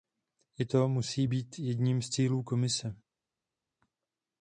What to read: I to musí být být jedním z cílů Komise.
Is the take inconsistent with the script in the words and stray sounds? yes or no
yes